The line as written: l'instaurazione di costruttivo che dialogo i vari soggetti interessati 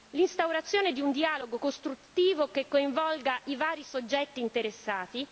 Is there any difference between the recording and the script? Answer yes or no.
yes